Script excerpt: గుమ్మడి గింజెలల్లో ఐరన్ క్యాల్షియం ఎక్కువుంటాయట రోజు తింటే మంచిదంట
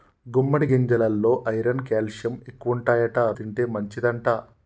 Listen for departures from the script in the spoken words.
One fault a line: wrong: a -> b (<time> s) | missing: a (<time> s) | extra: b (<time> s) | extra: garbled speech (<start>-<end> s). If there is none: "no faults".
missing: రోజు (3.2 s)